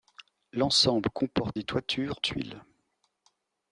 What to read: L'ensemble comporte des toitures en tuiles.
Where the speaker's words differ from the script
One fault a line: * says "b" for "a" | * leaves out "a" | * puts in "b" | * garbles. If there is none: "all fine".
* leaves out "en"